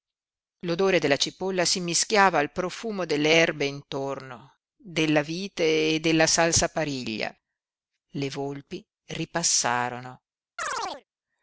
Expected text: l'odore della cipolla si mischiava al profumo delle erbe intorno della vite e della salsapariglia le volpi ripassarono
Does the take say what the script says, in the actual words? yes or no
yes